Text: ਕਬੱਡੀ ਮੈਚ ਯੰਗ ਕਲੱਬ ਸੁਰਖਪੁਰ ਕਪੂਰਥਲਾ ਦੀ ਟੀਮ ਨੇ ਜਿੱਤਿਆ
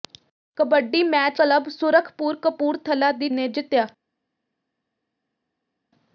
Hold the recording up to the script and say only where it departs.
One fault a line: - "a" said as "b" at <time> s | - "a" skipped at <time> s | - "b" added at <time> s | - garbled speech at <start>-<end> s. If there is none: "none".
- "ਯੰਗ" skipped at 1.4 s
- "ਟੀਮ" skipped at 3.3 s